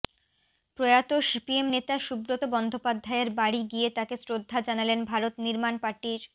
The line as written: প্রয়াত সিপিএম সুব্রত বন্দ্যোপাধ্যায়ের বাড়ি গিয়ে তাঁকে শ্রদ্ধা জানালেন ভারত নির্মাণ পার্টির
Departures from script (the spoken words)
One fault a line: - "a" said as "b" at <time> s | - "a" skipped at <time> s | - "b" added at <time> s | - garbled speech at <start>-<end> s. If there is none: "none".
- "নেতা" added at 1.7 s